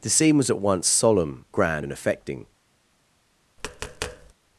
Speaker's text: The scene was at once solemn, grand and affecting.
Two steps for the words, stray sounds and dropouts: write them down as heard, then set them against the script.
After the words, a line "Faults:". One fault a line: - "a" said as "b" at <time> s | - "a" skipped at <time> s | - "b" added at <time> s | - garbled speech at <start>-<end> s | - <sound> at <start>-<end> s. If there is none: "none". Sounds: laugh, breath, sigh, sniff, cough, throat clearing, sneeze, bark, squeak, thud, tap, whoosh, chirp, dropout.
The scene was at once solemn, grand and affecting.
Faults:
- tap at 3.6-4.3 s